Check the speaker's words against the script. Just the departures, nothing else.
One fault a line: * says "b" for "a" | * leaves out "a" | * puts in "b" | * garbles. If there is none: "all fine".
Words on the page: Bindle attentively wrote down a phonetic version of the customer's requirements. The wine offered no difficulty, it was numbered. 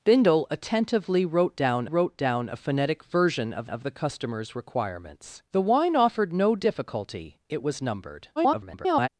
* puts in "wrote down"
* puts in "of"
* garbles